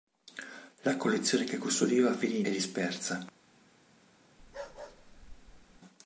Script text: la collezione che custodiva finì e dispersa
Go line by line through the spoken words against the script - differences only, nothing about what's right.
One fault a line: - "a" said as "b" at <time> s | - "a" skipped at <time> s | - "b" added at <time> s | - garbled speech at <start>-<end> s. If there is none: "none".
none